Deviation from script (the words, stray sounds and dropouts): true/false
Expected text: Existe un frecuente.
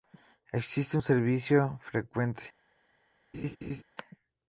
true